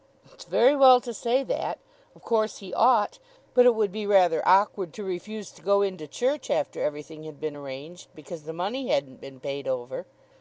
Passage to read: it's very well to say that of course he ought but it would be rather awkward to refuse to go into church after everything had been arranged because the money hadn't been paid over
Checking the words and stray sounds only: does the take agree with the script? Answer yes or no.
yes